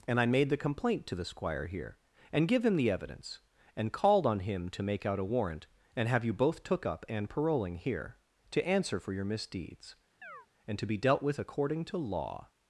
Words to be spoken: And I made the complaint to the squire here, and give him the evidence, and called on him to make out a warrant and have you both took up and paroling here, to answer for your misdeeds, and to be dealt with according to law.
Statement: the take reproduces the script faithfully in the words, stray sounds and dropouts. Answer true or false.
false